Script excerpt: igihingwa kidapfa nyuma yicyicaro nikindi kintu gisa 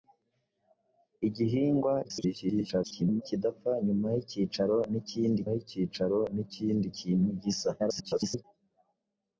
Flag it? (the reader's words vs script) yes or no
yes